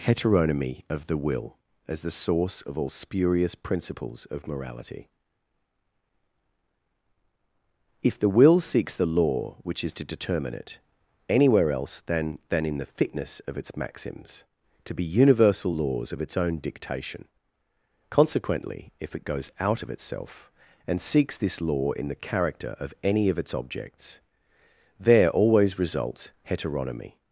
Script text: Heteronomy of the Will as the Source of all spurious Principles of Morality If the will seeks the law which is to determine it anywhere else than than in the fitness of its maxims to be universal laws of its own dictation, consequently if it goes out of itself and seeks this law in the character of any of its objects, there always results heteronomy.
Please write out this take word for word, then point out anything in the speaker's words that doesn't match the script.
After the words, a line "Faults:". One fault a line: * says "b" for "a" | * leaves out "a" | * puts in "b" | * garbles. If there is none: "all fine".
Heteronomy of the Will as the Source of all spurious Principles of Morality If the will seeks the law which is to determine it anywhere else than than in the fitness of its maxims to be universal laws of its own dictation, consequently if it goes out of itself and seeks this law in the character of any of its objects, there always results heteronomy.
Faults:
all fine